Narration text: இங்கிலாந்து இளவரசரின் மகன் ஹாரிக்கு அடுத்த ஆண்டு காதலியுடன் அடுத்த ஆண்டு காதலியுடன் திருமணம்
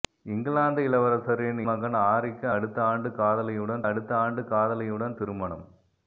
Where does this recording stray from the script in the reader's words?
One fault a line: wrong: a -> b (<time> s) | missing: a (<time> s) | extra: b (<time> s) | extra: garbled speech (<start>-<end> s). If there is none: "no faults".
no faults